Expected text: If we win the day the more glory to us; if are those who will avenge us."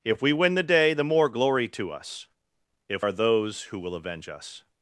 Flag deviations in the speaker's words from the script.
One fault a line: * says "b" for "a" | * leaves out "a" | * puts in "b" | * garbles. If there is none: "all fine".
all fine